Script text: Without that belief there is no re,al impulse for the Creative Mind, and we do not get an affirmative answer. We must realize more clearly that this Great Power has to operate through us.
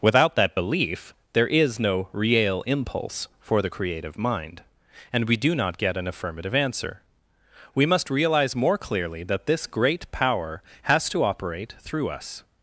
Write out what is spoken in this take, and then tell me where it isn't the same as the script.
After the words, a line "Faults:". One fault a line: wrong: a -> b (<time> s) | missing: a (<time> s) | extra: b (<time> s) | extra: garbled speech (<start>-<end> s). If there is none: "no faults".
Without that belief there is no re,al impulse for the Creative Mind, and we do not get an affirmative answer. We must realize more clearly that this Great Power has to operate through us.
Faults:
no faults